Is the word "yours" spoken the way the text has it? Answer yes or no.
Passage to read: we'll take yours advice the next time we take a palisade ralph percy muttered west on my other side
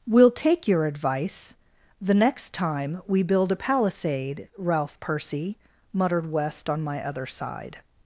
no